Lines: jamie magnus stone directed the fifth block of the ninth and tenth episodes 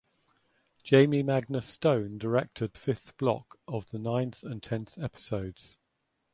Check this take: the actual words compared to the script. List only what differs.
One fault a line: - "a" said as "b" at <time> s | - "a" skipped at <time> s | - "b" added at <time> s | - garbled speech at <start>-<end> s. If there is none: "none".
- "the" skipped at 2.7 s